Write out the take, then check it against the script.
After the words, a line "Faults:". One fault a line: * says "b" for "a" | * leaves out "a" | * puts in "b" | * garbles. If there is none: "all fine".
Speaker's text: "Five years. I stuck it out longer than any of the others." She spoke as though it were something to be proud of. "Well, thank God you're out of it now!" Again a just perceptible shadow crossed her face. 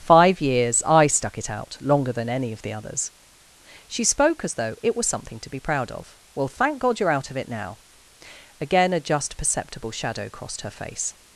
"Five years. I stuck it out longer than any of the others." She spoke as though it was something to be proud of. "Well, thank God you're out of it now!" Again a just perceptible shadow crossed her face.
Faults:
* says "was" for "were"